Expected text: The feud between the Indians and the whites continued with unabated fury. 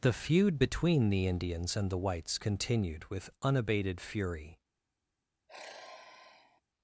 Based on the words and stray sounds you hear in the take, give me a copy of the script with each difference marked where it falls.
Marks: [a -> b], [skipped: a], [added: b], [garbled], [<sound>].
The feud between the Indians and the whites continued with unabated fury. [sigh]